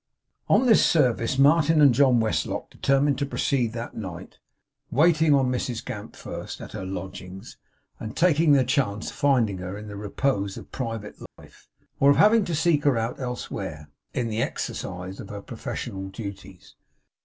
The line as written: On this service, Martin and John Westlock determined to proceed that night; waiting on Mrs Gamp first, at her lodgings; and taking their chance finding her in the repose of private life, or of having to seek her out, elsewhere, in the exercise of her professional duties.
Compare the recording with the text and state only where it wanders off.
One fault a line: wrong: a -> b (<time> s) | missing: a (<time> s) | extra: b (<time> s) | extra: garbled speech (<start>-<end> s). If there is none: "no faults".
no faults